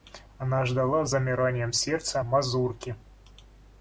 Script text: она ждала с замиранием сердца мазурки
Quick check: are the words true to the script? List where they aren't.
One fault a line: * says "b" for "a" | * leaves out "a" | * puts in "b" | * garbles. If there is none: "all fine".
all fine